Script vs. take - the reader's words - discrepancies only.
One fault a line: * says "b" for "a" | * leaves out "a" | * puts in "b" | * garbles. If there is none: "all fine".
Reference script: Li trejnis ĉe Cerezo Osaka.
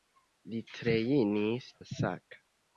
* leaves out "ĉe Cerezo"